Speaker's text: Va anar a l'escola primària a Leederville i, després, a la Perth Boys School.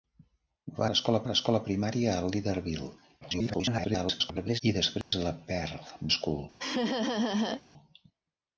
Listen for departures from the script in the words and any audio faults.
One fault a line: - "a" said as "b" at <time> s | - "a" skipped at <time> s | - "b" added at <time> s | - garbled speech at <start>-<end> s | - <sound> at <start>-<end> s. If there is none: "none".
- "anar" said as "l'escola" at 0.9 s
- garbled speech at 3.2-4.6 s
- dropout at 5.0-5.1 s
- "Boys" skipped at 5.9 s
- laugh at 6.6-7.6 s